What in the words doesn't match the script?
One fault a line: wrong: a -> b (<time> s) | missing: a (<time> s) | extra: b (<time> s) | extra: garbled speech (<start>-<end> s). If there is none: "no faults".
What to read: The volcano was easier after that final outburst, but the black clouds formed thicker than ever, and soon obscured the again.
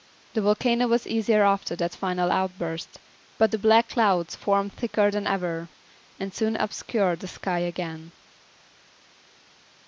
extra: sky (7.3 s)